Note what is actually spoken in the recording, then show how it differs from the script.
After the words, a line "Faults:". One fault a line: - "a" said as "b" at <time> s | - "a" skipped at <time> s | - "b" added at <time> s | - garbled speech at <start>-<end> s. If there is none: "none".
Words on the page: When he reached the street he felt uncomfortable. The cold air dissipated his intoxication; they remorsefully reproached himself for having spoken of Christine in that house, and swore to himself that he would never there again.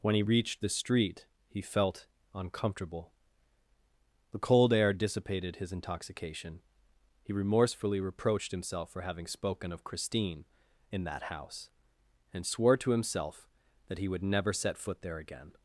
When he reached the street he felt uncomfortable. The cold air dissipated his intoxication; he remorsefully reproached himself for having spoken of Christine in that house, and swore to himself that he would never set foot there again.
Faults:
- "they" said as "he" at 7.2 s
- "set foot" added at 14.5 s